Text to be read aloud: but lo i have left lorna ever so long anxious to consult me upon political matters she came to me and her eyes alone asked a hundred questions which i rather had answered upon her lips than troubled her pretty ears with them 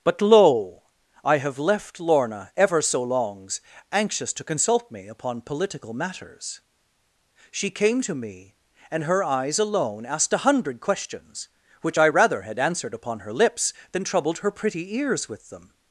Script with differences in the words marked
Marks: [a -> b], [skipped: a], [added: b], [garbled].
but lo i have left lorna ever so [long -> longs] anxious to consult me upon political matters she came to me and her eyes alone asked a hundred questions which i rather had answered upon her lips than troubled her pretty ears with them